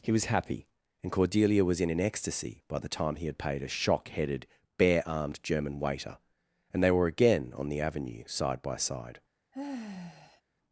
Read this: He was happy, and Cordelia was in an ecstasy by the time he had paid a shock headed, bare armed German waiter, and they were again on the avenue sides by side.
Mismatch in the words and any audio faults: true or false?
true